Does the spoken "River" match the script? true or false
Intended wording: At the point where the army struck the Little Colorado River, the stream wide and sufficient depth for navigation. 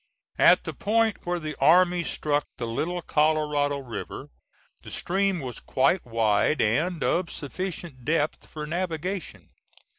true